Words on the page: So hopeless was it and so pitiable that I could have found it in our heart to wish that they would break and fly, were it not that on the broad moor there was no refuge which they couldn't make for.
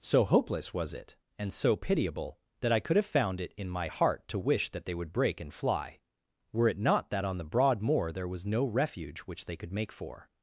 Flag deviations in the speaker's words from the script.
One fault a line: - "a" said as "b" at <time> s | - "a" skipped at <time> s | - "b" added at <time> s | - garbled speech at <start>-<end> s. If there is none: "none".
- "our" said as "my" at 3.7 s
- "couldn't" said as "could" at 9.6 s